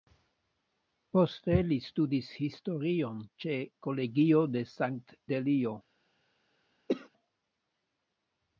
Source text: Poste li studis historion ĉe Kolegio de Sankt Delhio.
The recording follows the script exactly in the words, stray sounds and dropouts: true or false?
false